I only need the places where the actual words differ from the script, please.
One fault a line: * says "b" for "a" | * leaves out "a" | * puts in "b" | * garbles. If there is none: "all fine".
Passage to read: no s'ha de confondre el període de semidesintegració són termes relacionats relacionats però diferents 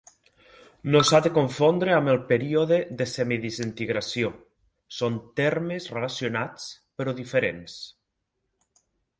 * puts in "amb"
* leaves out "relacionats"